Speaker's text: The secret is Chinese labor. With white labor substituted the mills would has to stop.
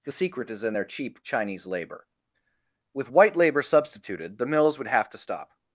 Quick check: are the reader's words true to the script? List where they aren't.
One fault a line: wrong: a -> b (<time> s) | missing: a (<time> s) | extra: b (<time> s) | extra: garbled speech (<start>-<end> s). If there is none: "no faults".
extra: in their cheap (0.6 s)
wrong: has -> have (4.9 s)